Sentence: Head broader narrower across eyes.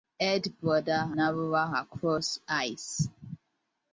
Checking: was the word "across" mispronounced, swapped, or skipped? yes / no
no